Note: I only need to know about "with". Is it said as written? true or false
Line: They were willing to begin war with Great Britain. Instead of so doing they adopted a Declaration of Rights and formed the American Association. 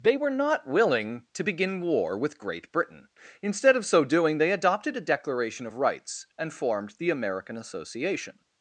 true